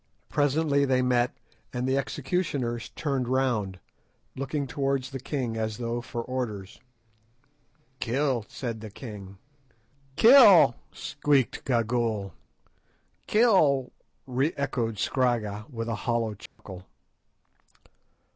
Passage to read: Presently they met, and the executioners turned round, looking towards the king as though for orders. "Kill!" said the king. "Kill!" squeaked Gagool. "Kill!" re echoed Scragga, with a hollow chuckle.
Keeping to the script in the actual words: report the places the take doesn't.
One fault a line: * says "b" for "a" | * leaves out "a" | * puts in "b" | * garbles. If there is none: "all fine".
all fine